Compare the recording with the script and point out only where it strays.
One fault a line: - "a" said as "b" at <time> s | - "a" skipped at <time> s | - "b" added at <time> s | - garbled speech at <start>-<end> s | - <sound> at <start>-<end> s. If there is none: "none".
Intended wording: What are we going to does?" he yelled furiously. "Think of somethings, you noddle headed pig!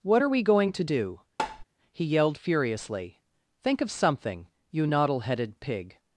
- "does" said as "do" at 0.8 s
- tap at 1.4-1.6 s
- "somethings" said as "something" at 3.9 s